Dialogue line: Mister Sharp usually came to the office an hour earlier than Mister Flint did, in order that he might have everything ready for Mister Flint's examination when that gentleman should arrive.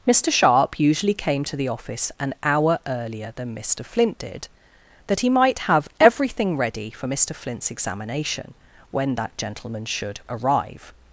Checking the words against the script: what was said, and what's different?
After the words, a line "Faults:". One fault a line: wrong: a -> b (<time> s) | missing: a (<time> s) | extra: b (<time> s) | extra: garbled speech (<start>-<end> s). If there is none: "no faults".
Mister Sharp usually came to the office an hour earlier than Mister Flint did, that he might have everything ready for Mister Flint's examination when that gentleman should arrive.
Faults:
missing: in order (4.5 s)